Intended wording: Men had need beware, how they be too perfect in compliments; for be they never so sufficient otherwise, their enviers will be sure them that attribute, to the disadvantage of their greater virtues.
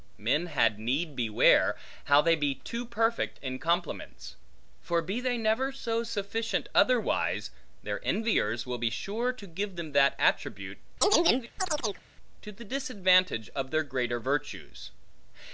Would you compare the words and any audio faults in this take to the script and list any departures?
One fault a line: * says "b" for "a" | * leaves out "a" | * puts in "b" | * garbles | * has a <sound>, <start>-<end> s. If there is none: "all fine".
* puts in "to give"
* has a chirp, 11.0-12.0 s